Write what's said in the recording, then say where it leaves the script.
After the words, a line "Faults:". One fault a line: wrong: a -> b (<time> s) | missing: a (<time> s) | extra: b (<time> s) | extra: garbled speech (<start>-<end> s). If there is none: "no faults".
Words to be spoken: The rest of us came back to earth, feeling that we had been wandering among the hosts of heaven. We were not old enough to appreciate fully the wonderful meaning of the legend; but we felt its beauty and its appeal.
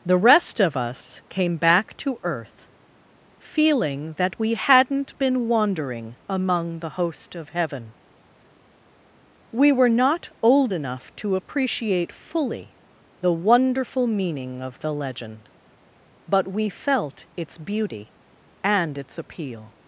The rest of us came back to earth, feeling that we hadn't been wandering among the host of heaven. We were not old enough to appreciate fully the wonderful meaning of the legend; but we felt its beauty and its appeal.
Faults:
wrong: had -> hadn't (4.5 s)
wrong: hosts -> host (6.9 s)